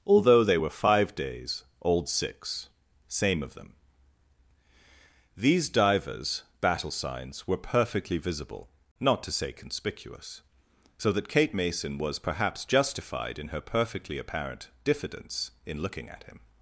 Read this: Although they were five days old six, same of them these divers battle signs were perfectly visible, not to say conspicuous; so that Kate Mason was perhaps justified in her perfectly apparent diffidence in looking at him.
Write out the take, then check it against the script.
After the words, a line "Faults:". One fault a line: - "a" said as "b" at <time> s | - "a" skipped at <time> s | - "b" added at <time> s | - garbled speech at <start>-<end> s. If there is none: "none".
Although they were five days old six, same of them these divers battle signs were perfectly visible, not to say conspicuous; so that Kate Mason was perhaps justified in her perfectly apparent diffidence in looking at him.
Faults:
none